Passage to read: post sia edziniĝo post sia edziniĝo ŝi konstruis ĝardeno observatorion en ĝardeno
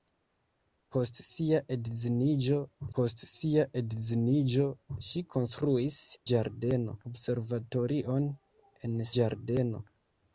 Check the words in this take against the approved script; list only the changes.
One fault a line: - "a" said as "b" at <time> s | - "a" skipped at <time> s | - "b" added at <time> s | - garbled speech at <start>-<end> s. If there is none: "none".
none